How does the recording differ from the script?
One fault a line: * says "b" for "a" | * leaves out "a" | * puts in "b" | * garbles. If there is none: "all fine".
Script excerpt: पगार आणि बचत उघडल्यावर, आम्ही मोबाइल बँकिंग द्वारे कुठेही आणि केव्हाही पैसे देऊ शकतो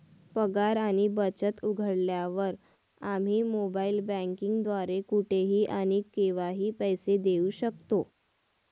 all fine